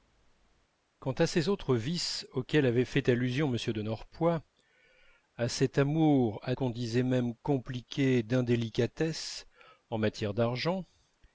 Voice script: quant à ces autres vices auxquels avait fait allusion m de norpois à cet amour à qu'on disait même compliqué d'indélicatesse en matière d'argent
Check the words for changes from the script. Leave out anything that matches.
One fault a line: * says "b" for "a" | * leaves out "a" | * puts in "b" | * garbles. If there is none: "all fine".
all fine